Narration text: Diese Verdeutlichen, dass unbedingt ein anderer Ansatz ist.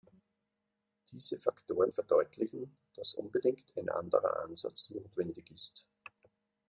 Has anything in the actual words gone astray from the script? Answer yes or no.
yes